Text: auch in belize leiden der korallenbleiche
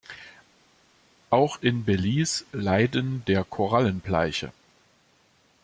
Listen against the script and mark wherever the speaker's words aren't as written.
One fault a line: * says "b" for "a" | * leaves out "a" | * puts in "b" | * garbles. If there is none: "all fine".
all fine